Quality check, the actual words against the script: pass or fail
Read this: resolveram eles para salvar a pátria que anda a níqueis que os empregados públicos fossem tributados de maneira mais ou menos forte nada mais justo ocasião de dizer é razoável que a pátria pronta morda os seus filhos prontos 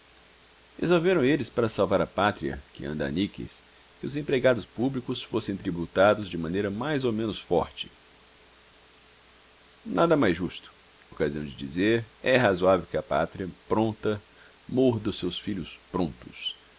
pass